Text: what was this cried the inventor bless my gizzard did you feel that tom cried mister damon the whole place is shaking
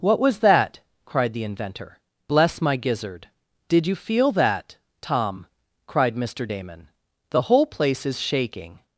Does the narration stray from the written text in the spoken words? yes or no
yes